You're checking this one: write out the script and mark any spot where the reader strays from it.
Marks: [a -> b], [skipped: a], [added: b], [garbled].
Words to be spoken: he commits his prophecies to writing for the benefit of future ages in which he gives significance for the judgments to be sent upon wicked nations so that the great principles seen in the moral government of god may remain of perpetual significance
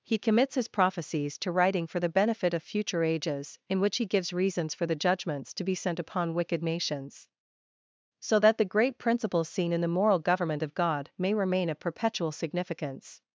he commits his prophecies to writing for the benefit of future ages in which he gives [significance -> reasons] for the judgments to be sent upon wicked nations so that the great principles seen in the moral government of god may remain of perpetual significance